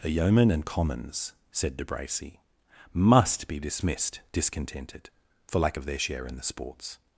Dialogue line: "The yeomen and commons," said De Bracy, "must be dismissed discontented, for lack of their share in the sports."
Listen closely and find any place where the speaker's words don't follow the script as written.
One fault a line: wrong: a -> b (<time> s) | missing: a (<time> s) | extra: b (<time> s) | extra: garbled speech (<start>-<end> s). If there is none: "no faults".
no faults